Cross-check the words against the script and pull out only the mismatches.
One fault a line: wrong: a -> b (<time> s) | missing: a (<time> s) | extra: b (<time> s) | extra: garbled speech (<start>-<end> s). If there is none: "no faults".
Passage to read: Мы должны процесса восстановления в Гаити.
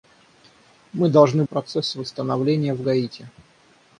no faults